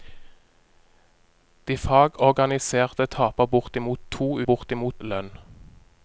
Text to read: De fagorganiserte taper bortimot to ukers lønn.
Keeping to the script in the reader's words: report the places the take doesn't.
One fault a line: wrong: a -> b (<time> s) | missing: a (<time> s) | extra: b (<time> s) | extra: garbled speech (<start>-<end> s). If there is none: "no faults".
wrong: ukers -> bortimot (4.4 s)